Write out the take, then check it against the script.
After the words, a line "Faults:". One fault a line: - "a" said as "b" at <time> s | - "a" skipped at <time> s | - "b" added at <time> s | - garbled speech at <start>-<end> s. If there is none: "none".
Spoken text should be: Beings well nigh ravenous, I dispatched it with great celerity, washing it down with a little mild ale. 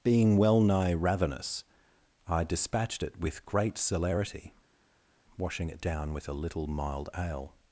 Being well nigh ravenous, I dispatched it with great celerity, washing it down with a little mild ale.
Faults:
- "Beings" said as "Being" at 0.0 s